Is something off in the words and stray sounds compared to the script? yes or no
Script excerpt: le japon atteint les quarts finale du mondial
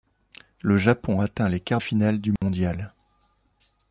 yes